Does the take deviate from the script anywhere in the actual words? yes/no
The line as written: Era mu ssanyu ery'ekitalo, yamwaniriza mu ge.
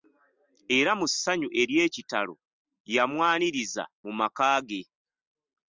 yes